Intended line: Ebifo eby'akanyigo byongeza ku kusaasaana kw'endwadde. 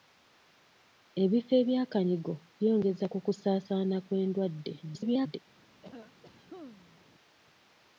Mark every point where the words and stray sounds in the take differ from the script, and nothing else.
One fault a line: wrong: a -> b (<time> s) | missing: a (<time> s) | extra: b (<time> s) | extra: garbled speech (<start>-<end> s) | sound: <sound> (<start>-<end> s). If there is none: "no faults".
extra: garbled speech (4.8-5.4 s)
sound: cough (5.8-7.0 s)